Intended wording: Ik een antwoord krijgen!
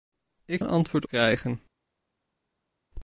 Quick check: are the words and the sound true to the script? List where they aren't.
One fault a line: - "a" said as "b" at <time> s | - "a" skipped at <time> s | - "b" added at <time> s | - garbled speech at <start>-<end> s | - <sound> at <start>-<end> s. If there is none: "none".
none